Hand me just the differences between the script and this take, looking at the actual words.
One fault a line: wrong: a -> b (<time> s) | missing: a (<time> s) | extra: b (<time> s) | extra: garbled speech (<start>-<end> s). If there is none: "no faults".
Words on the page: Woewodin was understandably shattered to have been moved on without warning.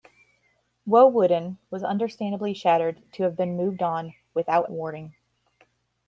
no faults